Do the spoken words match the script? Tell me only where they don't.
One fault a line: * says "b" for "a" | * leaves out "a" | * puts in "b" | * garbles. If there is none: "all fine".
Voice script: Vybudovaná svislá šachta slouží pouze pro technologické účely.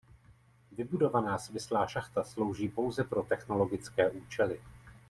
all fine